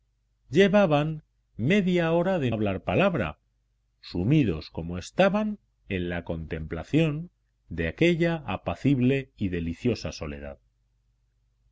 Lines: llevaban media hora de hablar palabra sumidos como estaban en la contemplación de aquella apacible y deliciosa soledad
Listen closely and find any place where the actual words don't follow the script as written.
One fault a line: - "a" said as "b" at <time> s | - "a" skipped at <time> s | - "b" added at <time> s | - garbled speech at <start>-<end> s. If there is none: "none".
none